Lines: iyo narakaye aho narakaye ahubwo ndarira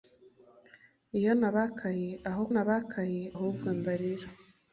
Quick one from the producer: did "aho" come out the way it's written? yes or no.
yes